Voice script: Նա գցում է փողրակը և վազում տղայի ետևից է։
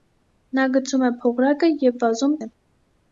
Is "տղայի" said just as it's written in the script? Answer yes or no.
no